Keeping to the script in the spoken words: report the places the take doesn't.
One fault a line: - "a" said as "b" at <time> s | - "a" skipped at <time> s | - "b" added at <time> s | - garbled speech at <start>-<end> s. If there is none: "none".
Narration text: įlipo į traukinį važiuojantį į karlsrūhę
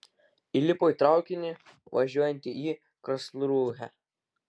none